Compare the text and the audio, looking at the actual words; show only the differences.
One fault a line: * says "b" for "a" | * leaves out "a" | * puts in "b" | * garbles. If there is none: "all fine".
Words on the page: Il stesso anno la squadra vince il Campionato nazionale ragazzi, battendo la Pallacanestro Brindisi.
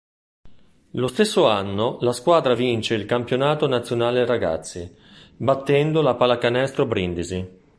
* says "Lo" for "Il"